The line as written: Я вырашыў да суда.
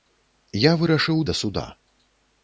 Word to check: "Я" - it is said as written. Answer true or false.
true